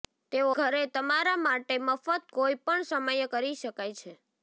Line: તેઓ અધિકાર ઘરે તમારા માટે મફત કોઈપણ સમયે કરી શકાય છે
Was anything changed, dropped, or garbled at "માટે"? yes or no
no